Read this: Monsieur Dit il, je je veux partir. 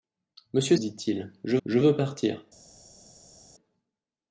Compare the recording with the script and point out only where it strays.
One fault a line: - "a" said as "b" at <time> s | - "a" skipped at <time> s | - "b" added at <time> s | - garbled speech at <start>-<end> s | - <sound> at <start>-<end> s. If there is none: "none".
none